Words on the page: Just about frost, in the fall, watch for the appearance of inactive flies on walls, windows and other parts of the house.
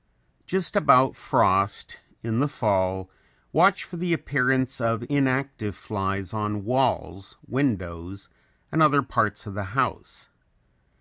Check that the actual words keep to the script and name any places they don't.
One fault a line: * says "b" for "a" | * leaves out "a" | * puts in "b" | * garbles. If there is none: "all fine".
all fine